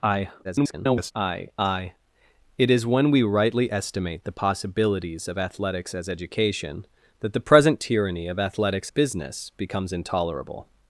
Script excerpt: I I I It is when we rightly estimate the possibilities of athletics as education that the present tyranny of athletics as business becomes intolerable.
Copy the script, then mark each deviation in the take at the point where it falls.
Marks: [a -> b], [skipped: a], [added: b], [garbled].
I [garbled] I I It is when we rightly estimate the possibilities of athletics as education that the present tyranny of athletics [skipped: as] business becomes intolerable.